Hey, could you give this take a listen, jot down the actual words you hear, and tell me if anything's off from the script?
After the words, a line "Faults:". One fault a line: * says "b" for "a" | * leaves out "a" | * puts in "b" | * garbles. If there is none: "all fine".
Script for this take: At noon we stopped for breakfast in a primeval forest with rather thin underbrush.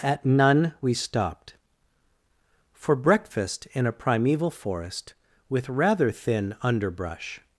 At none we stopped for breakfast in a primeval forest with rather thin underbrush.
Faults:
* says "none" for "noon"